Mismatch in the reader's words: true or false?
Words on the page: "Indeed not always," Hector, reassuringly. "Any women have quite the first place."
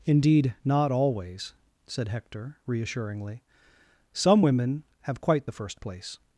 true